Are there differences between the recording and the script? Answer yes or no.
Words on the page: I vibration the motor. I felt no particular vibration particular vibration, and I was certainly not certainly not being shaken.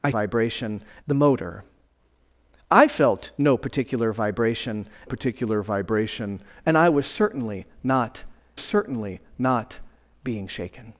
no